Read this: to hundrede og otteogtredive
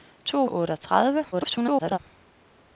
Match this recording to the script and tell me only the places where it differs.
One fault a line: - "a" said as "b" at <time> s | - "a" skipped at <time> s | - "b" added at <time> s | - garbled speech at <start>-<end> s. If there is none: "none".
- "hundrede" skipped at 0.5 s
- garbled speech at 1.3-2.0 s